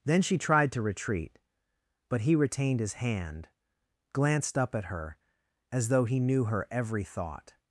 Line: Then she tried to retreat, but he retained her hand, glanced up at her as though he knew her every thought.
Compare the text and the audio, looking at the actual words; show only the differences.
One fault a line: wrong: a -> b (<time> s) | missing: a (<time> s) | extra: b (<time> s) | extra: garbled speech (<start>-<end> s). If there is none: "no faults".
wrong: her -> his (2.8 s)